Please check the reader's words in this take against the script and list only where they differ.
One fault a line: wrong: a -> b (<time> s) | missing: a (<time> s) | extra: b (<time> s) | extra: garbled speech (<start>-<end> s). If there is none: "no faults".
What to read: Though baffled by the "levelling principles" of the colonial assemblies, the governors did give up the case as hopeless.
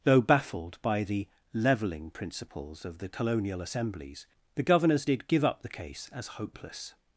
no faults